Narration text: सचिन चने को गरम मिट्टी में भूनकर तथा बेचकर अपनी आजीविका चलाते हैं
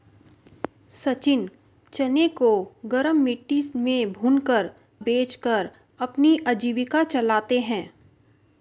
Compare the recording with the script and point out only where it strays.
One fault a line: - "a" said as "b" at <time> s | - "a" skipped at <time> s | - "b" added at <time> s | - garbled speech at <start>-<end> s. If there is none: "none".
- "तथा" skipped at 4.7 s